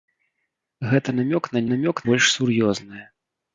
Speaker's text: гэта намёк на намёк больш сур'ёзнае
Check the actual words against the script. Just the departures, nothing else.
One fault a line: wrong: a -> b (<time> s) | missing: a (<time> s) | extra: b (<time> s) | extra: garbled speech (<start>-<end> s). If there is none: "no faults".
no faults